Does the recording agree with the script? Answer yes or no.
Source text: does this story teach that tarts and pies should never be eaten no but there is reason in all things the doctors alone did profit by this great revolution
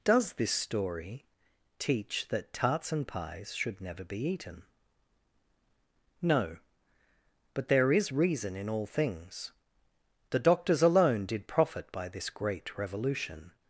yes